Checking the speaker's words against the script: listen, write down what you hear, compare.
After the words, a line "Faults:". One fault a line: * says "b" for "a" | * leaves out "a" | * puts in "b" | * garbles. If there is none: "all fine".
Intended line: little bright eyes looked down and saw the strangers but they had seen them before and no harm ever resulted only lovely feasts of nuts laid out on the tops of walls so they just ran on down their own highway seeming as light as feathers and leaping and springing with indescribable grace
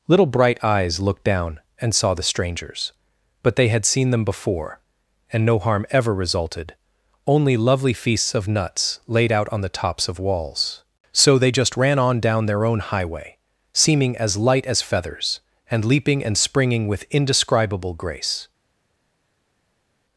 little bright eyes looked down and saw the strangers but they had seen them before and no harm ever resulted only lovely feasts of nuts laid out on the tops of walls so they just ran on down their own highway seeming as light as feathers and leaping and springing with indescribable grace
Faults:
all fine